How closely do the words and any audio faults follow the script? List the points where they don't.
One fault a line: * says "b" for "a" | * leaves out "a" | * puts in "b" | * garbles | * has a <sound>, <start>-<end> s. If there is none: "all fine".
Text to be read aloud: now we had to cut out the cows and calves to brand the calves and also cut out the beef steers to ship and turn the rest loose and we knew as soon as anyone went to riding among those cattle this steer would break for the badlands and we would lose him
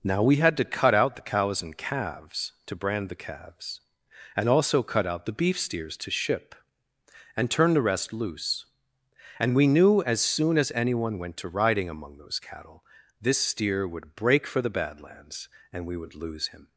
all fine